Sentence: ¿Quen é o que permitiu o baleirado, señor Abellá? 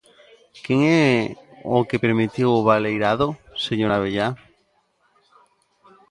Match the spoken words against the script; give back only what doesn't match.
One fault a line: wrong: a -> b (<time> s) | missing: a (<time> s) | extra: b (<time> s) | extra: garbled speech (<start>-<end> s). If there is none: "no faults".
no faults